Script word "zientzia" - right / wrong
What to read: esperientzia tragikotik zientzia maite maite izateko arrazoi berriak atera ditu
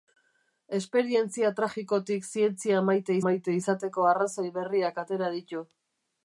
right